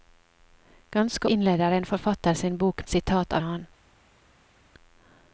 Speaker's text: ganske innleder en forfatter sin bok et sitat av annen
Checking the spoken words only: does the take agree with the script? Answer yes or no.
yes